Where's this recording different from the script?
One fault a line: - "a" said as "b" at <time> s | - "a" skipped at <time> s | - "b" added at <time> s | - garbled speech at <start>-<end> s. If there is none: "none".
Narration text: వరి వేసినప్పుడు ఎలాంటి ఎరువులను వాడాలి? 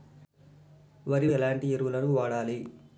- "వేసినప్పుడు" skipped at 1.3 s